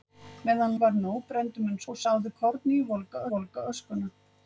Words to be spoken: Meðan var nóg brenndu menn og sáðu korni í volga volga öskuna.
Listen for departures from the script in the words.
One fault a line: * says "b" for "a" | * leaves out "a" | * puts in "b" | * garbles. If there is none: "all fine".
all fine